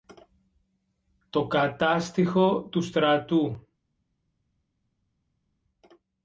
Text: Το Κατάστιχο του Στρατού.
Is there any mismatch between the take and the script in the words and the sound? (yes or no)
no